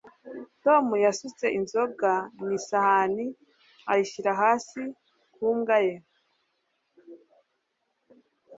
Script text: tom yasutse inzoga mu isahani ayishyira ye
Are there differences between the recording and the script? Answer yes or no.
yes